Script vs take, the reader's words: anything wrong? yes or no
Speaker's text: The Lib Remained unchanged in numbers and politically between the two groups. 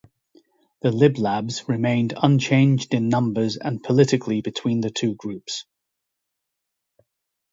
yes